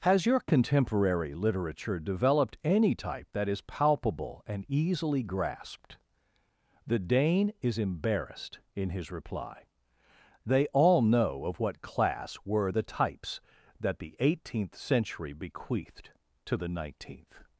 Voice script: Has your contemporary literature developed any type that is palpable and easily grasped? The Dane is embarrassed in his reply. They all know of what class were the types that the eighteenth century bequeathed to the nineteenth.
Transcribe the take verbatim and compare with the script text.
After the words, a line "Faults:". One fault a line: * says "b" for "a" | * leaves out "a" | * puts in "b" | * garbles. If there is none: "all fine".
Has your contemporary literature developed any type that is palpable and easily grasped? The Dane is embarrassed in his reply. They all know of what class were the types that the eighteenth century bequeathed to the nineteenth.
Faults:
all fine